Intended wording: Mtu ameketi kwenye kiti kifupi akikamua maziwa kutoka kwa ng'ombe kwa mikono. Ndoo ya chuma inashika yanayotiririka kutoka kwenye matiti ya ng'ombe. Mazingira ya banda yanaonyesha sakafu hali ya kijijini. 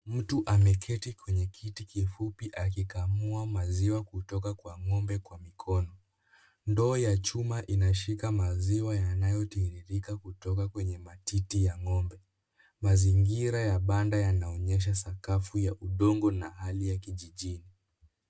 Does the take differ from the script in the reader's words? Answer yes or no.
yes